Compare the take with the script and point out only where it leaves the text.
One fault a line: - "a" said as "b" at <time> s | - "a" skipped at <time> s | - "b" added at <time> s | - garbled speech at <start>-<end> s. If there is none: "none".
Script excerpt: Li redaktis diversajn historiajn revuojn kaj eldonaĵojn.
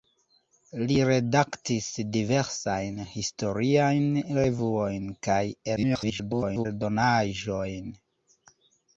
- garbled speech at 5.8-6.7 s